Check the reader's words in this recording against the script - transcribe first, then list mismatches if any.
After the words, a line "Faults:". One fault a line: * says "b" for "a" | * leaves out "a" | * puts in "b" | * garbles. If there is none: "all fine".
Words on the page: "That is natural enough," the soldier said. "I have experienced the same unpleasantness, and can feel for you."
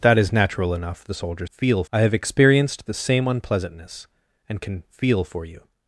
"That is natural enough," the soldier feel. "I have experienced the same unpleasantness, and can feel for you."
Faults:
* says "feel" for "said"